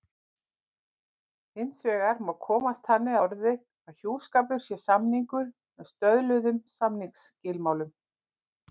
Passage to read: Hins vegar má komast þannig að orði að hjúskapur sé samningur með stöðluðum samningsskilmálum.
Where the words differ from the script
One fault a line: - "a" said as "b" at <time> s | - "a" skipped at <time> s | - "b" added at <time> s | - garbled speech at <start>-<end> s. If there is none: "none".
- "að" skipped at 3.2 s